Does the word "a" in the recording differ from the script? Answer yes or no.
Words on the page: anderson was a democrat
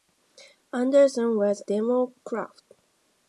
yes